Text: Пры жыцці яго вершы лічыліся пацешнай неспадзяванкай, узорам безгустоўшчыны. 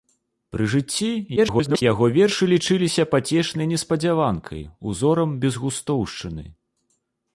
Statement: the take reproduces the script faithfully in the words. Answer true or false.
false